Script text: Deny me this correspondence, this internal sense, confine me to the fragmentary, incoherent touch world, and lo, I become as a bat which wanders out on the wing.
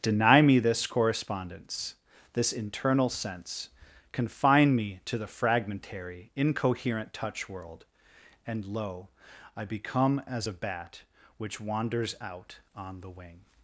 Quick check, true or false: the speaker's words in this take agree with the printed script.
true